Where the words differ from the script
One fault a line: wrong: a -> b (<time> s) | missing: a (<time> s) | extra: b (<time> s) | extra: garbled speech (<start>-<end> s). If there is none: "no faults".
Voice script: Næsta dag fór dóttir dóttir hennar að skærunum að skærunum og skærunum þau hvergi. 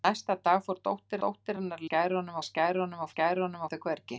no faults